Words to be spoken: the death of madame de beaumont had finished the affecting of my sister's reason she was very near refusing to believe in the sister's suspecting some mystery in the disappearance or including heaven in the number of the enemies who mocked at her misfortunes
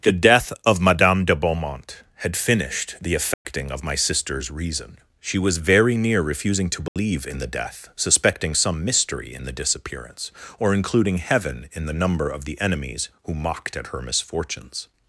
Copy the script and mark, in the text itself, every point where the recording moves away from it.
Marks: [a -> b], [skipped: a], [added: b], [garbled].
the death of madame de beaumont had finished the affecting of my sister's reason she was very near refusing to believe in the [sister's -> death] suspecting some mystery in the disappearance or including heaven in the number of the enemies who mocked at her misfortunes